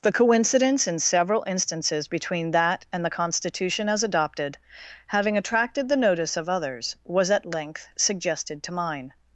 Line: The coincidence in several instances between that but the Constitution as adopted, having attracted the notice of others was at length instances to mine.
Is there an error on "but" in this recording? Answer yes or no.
yes